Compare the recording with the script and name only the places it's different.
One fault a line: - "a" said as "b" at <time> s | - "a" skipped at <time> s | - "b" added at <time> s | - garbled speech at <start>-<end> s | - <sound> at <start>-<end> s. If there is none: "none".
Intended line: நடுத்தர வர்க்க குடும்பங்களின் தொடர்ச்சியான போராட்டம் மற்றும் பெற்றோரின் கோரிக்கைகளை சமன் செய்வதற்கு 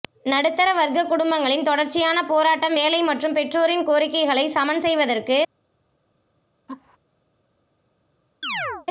- "வேலை" added at 2.7 s
- laugh at 6.7-7.0 s
- chirp at 8.4-8.9 s